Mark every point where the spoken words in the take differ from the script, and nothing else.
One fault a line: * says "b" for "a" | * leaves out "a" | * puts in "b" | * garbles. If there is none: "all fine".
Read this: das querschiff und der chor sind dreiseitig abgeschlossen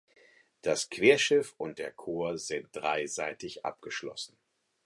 all fine